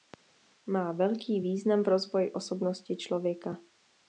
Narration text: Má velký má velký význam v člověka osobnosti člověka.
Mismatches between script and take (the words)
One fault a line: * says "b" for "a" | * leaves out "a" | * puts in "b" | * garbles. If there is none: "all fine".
* leaves out "má velký"
* says "rozvoji" for "člověka"